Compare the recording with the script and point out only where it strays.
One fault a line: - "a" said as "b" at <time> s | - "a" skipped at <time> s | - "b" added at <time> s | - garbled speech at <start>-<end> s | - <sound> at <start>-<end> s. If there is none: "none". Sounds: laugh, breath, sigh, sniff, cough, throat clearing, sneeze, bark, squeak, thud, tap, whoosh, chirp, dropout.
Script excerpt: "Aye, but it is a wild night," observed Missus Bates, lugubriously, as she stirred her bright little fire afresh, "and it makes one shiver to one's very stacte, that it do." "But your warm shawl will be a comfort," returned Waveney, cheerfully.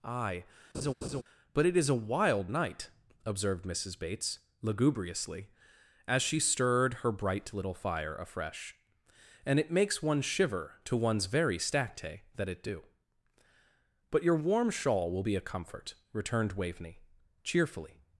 - laugh at 0.7-1.2 s